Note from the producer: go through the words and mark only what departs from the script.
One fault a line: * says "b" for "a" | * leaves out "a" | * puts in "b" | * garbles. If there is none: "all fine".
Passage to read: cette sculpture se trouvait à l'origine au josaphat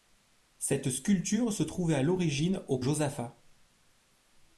all fine